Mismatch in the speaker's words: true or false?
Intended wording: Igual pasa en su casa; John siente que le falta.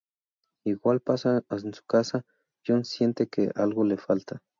true